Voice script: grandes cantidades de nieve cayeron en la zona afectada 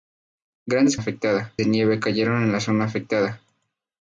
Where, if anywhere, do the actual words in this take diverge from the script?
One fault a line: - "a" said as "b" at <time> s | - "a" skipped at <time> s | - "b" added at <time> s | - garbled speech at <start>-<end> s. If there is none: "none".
- "cantidades" said as "afectada" at 1.0 s